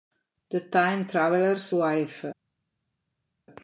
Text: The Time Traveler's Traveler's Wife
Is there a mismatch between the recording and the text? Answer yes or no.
yes